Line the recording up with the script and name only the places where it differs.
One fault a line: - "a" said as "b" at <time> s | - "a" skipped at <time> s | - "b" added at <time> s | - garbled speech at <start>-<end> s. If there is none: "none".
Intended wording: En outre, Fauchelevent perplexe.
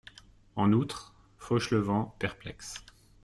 none